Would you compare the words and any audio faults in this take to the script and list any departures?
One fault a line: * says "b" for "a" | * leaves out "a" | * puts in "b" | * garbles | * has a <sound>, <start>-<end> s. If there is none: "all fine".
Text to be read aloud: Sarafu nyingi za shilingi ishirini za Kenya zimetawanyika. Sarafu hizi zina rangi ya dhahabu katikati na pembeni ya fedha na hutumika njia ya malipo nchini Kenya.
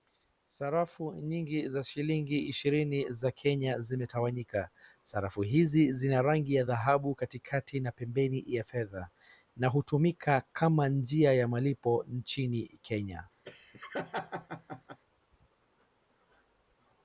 * puts in "kama"
* has a laugh, 13.4-15.0 s